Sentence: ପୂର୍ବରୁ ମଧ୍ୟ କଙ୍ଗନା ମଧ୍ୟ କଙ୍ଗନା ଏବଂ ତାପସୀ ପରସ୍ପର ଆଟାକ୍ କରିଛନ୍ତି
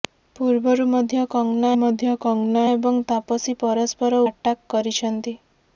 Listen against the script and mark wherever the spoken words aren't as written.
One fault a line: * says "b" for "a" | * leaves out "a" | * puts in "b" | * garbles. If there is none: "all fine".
all fine